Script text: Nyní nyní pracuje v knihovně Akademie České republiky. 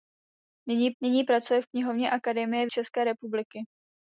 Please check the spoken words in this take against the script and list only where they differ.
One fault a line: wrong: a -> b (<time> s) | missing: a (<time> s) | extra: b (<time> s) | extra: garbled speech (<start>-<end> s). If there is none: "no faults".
no faults